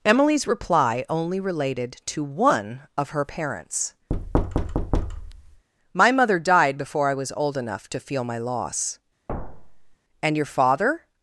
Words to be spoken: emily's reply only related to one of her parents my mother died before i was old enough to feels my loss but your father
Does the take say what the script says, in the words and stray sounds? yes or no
no